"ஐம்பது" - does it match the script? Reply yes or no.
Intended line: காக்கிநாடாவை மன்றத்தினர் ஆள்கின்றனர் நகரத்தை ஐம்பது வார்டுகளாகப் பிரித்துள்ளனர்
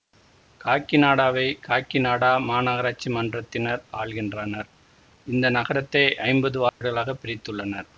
yes